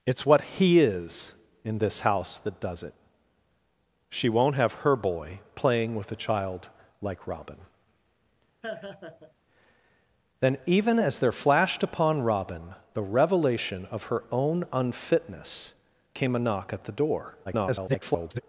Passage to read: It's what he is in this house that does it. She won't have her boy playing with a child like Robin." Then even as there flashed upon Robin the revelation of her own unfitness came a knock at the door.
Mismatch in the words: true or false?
true